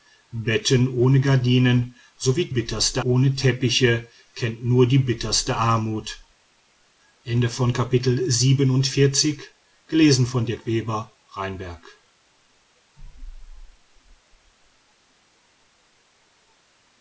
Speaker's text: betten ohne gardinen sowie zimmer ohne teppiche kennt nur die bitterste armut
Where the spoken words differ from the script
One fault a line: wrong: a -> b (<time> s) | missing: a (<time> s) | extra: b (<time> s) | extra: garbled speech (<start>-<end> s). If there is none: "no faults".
wrong: zimmer -> bitterste (2.5 s)